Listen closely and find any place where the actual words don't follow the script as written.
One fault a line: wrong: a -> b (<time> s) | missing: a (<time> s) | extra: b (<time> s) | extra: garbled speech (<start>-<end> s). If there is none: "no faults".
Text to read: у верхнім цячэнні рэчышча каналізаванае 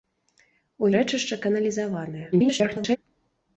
missing: верхнім цячэнні (0.9 s)
extra: garbled speech (2.3-3.0 s)